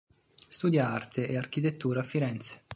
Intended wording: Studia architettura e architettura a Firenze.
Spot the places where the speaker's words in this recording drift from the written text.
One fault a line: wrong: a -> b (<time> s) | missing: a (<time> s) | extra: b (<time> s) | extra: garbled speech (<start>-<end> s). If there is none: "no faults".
wrong: architettura -> arte (0.9 s)